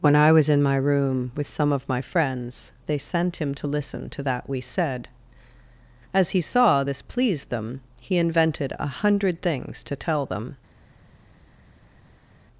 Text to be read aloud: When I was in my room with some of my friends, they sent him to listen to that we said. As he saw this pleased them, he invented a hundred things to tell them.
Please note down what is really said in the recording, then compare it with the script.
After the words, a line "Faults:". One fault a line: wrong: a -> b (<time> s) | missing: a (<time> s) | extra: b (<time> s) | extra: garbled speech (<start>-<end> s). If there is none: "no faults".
When I was in my room with some of my friends, they sent him to listen to that we said. As he saw this pleased them, he invented a hundred things to tell them.
Faults:
no faults